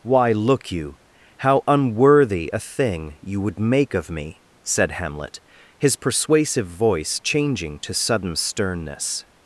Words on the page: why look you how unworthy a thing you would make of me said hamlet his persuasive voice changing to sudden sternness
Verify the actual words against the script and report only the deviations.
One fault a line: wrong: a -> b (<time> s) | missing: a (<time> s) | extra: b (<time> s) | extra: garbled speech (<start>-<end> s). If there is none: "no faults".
no faults